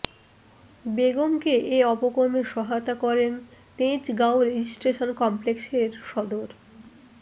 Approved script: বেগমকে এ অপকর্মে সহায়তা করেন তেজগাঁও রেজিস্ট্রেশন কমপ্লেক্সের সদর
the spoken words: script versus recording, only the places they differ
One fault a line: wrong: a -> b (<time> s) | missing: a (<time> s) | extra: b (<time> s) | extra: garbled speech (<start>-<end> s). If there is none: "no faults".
no faults